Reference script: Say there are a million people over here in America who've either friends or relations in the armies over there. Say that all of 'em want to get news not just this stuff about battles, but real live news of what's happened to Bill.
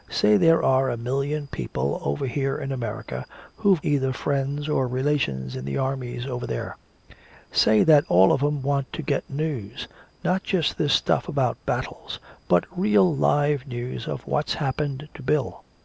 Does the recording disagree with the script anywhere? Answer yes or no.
no